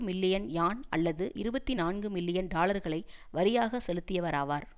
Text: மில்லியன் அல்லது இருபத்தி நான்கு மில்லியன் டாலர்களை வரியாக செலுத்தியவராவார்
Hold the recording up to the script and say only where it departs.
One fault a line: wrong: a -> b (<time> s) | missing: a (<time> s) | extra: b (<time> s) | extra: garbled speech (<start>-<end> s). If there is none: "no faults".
extra: யான் (0.5 s)